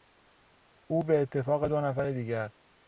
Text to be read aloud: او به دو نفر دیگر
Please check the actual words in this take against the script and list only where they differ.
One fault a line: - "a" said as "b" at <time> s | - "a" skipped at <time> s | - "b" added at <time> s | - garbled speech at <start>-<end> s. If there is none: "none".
- "اتفاق" added at 1.2 s